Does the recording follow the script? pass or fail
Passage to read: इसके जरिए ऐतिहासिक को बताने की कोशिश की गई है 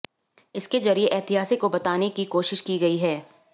pass